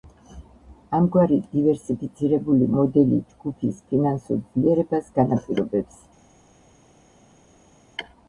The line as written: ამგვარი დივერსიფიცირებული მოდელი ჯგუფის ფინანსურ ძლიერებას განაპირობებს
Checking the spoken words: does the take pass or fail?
pass